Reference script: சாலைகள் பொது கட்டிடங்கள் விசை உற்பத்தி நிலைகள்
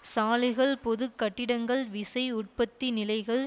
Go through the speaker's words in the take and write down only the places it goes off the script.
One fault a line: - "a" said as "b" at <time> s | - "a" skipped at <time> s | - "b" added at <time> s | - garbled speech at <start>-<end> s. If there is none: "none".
none